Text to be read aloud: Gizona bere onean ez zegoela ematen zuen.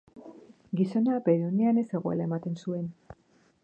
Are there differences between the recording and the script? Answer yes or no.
no